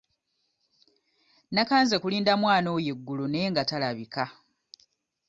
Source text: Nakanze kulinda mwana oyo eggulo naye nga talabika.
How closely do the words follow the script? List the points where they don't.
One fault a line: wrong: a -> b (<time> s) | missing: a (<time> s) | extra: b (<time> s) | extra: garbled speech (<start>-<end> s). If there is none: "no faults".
no faults